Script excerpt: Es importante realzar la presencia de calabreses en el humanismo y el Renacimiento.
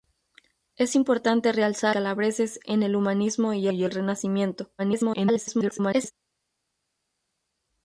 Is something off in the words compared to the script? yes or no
yes